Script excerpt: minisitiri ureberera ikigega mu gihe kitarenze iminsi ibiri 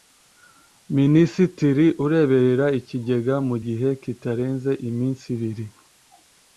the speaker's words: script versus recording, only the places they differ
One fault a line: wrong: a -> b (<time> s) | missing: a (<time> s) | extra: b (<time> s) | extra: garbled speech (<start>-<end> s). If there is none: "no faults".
no faults